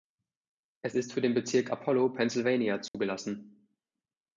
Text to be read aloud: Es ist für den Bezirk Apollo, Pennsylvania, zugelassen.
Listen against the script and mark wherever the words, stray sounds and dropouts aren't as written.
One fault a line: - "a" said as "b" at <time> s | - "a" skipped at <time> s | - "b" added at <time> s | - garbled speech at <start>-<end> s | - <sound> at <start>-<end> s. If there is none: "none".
- dropout at 2.9-2.9 s